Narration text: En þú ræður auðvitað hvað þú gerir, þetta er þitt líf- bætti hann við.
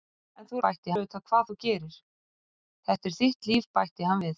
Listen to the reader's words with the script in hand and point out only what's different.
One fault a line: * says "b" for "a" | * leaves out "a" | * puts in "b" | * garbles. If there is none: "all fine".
* says "bætti" for "ræður"